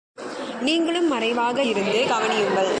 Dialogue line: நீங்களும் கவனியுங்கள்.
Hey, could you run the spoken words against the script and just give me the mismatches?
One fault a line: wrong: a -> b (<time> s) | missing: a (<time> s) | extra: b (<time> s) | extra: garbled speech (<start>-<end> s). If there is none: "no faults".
extra: மறைவாக இருந்து (1.1 s)